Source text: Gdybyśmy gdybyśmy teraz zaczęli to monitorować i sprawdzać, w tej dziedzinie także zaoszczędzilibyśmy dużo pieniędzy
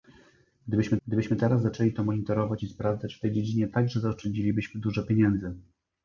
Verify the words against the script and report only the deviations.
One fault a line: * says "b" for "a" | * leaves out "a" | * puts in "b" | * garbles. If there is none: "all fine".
all fine